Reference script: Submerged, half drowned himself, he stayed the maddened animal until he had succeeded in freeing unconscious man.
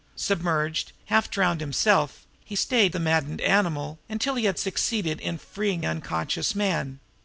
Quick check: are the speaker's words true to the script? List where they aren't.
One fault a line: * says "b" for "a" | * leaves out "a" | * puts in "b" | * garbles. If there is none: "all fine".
all fine